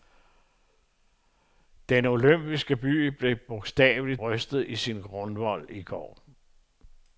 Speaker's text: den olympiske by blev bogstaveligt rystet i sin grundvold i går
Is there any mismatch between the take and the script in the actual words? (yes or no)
no